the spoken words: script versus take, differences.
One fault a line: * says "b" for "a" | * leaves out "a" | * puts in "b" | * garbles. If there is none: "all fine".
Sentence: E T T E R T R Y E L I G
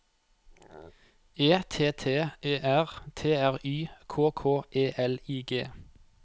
* puts in "K K"